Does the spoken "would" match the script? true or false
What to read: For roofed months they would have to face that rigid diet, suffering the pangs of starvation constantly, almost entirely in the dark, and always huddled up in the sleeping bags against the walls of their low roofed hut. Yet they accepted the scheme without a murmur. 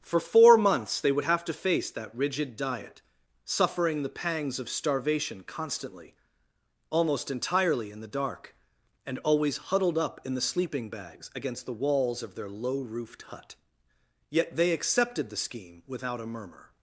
true